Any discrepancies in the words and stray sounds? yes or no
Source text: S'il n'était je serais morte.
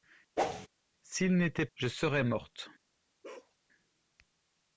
yes